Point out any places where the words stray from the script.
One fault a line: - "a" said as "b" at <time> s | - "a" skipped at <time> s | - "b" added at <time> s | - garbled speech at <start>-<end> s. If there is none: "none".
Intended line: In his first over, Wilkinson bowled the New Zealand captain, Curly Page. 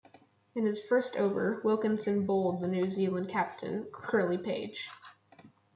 none